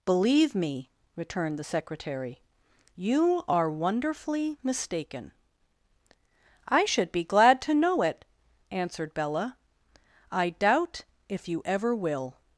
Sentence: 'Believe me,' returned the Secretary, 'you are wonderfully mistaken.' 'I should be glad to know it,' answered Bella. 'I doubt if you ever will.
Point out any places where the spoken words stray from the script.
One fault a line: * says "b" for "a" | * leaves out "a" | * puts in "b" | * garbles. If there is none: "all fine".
all fine